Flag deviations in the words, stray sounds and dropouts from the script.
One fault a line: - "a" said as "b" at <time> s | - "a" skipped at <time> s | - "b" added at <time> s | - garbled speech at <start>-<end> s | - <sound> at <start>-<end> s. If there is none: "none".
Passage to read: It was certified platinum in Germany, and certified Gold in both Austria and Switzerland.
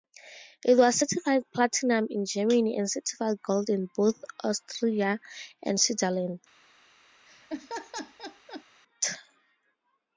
- laugh at 7.2-8.6 s